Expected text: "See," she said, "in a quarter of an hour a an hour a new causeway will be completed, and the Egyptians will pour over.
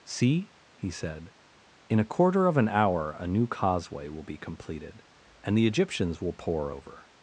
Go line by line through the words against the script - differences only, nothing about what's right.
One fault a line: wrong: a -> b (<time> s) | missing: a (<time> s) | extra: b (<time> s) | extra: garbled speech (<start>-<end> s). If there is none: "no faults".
wrong: she -> he (0.7 s)
missing: an hour a (3.3 s)